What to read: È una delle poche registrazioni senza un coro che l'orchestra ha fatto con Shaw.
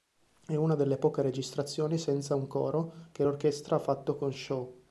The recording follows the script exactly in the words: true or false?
true